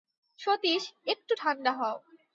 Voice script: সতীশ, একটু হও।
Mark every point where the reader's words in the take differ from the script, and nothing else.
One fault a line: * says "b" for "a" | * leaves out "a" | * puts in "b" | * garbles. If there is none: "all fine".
* puts in "ঠাণ্ডা"